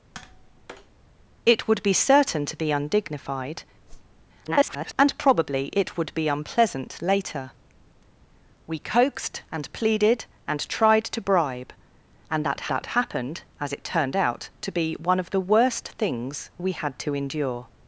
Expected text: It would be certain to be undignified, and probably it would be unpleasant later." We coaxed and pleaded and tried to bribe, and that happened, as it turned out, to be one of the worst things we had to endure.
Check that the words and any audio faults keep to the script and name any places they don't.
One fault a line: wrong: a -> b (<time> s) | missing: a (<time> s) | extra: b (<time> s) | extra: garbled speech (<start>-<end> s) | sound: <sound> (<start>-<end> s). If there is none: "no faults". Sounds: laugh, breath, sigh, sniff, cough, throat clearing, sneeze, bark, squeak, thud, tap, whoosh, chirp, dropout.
sound: tap (0.1-0.9 s)
sound: whoosh (3.9-4.3 s)
extra: garbled speech (4.4-4.9 s)
extra: that (12.7 s)